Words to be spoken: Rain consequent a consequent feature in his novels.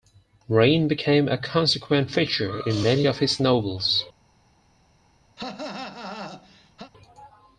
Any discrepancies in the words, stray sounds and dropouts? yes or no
yes